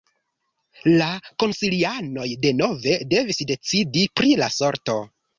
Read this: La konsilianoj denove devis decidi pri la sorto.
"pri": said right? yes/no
yes